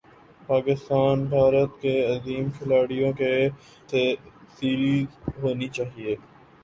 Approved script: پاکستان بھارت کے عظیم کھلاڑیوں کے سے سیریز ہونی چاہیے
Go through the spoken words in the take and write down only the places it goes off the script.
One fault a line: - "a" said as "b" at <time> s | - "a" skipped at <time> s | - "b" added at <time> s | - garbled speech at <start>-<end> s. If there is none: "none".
none